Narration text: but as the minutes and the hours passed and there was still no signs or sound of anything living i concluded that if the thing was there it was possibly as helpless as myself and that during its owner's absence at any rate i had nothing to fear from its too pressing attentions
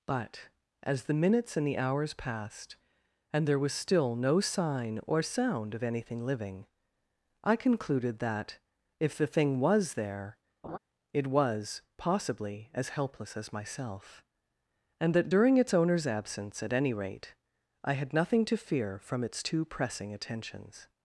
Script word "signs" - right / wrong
wrong